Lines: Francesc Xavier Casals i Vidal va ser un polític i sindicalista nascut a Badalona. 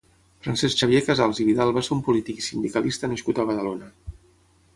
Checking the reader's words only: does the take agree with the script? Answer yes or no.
yes